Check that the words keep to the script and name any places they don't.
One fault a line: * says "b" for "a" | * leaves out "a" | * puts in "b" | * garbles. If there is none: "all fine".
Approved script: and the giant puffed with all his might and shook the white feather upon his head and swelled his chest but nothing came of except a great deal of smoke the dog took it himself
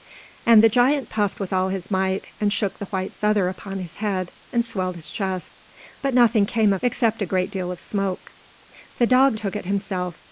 all fine